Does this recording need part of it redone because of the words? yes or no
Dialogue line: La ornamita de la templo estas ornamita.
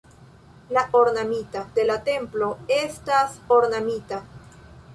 no